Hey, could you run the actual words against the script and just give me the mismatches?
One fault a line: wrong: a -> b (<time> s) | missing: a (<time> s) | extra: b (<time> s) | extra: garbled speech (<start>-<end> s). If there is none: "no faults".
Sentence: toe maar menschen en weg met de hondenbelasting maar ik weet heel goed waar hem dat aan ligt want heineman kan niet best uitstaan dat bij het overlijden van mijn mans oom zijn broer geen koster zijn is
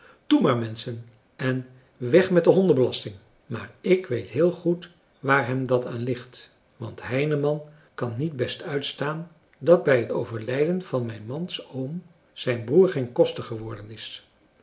wrong: zijn -> geworden (13.4 s)